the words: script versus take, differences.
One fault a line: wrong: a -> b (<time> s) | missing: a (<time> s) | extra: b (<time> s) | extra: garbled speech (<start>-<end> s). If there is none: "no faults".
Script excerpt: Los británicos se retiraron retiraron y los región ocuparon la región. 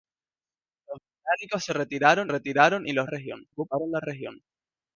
no faults